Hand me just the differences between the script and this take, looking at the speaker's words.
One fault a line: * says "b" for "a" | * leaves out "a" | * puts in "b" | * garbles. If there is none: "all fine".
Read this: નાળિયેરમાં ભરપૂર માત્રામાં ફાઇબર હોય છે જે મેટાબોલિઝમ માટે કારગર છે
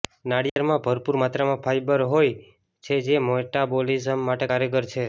all fine